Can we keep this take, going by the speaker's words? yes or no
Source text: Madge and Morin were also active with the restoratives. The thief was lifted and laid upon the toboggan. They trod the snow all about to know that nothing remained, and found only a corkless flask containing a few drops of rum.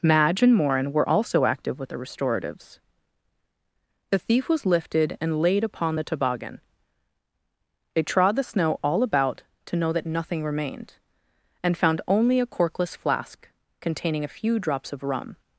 yes